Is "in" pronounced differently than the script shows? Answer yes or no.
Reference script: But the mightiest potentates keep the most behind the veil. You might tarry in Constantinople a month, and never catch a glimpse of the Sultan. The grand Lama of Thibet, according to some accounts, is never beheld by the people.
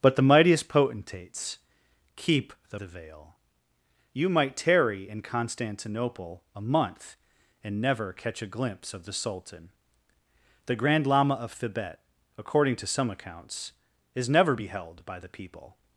no